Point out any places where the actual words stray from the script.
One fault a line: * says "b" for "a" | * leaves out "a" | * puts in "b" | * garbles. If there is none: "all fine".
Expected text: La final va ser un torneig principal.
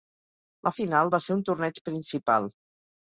all fine